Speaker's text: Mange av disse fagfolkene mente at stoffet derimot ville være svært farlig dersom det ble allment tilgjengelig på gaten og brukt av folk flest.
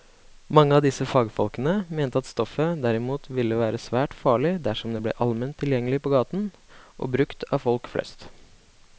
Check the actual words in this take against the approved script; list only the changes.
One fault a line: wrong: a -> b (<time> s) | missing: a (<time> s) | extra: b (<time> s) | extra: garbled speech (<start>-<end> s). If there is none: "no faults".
no faults